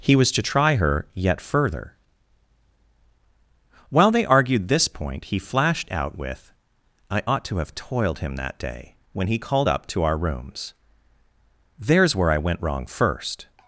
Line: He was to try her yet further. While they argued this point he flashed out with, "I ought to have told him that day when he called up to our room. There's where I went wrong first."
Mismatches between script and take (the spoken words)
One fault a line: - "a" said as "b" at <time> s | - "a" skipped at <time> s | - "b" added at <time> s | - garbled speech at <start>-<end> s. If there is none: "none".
- "told" said as "toiled" at 7.8 s
- "room" said as "rooms" at 10.2 s